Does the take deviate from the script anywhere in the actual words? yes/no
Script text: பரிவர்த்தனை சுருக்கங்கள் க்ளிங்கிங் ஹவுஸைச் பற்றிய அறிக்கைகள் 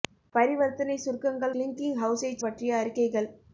no